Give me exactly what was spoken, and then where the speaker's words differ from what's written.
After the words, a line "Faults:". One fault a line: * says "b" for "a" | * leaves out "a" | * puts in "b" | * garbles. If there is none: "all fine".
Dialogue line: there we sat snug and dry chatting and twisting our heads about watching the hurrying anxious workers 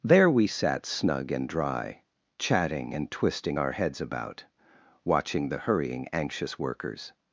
there we sat snug and dry chatting and twisting our heads about watching the hurrying anxious workers
Faults:
all fine